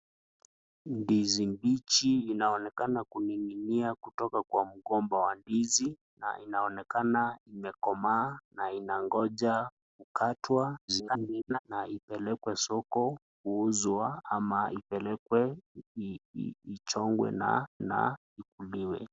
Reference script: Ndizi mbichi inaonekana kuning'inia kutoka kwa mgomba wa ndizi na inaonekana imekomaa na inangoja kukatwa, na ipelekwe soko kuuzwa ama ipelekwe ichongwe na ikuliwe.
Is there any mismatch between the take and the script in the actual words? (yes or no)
yes